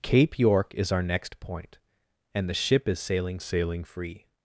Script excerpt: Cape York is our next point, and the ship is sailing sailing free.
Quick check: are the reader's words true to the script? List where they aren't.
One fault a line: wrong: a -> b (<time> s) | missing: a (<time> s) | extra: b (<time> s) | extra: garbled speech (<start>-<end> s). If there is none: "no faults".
no faults